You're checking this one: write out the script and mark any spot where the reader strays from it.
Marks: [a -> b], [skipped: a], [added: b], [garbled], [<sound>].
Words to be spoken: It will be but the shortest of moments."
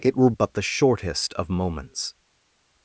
It will [skipped: be] but the shortest of moments."